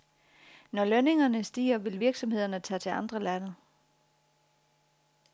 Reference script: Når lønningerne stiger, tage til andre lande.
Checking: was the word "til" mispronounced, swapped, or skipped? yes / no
no